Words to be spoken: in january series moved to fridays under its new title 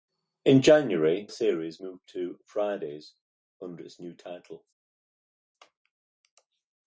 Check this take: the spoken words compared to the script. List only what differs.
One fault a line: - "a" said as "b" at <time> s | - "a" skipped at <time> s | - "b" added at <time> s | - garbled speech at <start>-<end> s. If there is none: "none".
none